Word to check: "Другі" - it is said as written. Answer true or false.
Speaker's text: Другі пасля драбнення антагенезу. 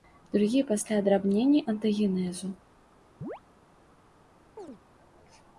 true